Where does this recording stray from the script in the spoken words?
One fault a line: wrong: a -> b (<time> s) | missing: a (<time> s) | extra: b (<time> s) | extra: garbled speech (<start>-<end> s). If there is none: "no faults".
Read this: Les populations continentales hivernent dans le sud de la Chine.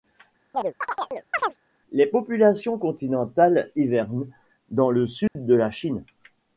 no faults